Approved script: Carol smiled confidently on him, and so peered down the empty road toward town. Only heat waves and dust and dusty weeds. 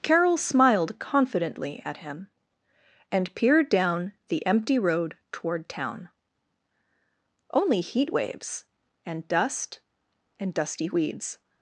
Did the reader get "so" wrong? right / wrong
wrong